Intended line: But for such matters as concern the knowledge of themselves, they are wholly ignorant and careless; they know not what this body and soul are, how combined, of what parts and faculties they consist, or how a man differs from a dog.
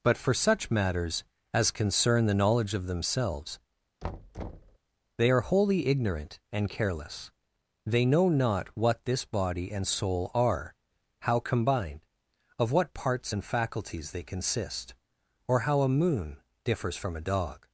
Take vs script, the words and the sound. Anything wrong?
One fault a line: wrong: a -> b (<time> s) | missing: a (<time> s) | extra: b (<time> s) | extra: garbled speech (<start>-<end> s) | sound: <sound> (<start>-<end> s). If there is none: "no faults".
sound: thud (4.0-4.8 s)
wrong: man -> moon (15.9 s)